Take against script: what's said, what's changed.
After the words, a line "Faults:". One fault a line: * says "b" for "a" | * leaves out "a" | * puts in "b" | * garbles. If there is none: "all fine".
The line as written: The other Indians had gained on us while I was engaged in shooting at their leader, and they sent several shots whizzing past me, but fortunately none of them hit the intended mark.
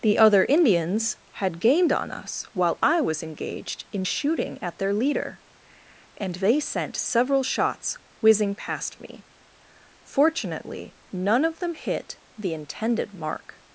The other Indians had gained on us while I was engaged in shooting at their leader, and they sent several shots whizzing past me, fortunately none of them hit the intended mark.
Faults:
* leaves out "but"